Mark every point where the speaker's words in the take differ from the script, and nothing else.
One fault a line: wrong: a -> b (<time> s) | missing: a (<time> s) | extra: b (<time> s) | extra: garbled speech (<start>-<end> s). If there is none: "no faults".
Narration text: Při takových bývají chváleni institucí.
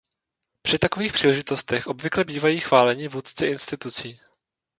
extra: příležitostech obvykle (1.1 s)
extra: vůdci (3.1 s)